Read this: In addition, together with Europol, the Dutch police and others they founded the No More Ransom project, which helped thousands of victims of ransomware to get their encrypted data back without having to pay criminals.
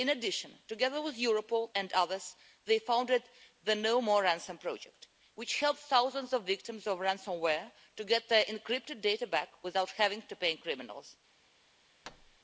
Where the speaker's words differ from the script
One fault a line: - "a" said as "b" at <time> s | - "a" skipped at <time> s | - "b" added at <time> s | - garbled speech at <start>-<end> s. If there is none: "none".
- "the Dutch police" skipped at 1.8 s